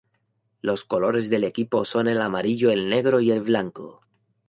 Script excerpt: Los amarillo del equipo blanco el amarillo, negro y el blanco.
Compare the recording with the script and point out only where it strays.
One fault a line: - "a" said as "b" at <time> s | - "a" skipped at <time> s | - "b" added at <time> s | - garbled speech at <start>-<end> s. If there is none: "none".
- "amarillo" said as "colores" at 0.8 s
- "blanco" said as "son" at 1.8 s
- "el" added at 2.7 s